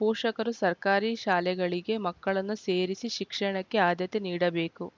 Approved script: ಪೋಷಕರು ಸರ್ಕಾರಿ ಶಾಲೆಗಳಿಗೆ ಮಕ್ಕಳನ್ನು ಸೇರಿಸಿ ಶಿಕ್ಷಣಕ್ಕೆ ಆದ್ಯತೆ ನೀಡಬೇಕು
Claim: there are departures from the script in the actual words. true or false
false